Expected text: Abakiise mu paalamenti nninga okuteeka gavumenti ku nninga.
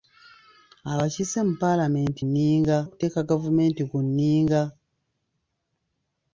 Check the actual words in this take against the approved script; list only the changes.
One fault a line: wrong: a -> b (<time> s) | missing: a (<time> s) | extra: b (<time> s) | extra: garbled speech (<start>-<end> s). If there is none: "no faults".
no faults